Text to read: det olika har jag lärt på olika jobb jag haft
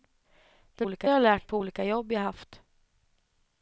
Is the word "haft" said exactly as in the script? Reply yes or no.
yes